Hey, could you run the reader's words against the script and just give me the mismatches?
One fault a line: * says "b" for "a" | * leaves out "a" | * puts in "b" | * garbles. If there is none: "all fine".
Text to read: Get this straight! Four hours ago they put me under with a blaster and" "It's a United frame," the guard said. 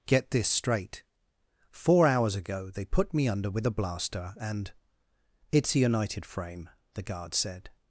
all fine